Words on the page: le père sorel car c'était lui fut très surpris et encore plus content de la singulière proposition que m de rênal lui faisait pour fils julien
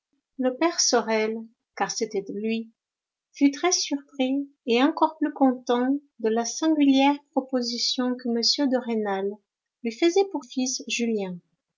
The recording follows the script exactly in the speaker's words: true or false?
true